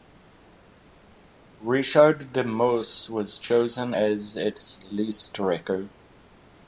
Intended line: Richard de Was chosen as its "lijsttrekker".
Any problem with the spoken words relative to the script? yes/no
yes